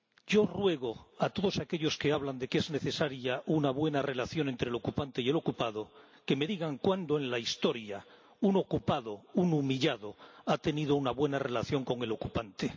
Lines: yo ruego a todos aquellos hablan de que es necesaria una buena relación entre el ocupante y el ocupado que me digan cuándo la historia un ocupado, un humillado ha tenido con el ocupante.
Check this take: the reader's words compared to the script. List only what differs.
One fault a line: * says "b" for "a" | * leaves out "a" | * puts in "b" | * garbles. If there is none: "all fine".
* puts in "que"
* puts in "en"
* puts in "una buena relación"